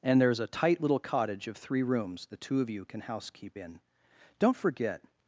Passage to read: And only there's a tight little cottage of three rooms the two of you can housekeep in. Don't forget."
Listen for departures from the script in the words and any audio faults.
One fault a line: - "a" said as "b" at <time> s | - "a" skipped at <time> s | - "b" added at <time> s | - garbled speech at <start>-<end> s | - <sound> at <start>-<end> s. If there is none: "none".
- "only" skipped at 0.2 s